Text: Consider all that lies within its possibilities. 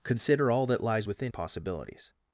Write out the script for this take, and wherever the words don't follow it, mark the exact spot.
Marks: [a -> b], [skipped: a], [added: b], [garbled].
Consider all that lies within [skipped: its] possibilities.